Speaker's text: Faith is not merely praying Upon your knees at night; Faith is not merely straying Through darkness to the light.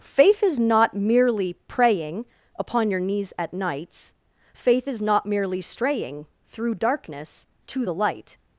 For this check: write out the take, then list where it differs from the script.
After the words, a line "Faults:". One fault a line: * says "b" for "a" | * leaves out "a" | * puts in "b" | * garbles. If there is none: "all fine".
Faith is not merely praying Upon your knees at nights; Faith is not merely straying Through darkness to the light.
Faults:
* says "nights" for "night"